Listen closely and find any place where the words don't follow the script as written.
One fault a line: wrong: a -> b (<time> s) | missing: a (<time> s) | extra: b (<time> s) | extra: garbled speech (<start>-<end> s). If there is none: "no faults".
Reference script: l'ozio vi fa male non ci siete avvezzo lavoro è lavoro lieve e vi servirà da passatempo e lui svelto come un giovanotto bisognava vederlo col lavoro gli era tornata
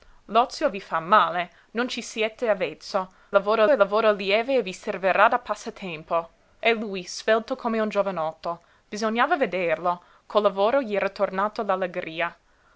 no faults